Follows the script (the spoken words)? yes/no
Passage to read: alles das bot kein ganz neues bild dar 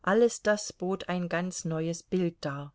no